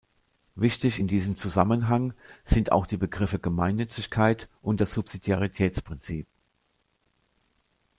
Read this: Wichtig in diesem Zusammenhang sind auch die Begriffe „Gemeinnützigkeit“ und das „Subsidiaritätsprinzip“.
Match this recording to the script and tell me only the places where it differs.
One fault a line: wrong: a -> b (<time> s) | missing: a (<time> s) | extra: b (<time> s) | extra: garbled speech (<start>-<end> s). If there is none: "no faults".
no faults